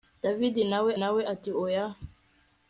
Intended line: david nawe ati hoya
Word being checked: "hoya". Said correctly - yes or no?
yes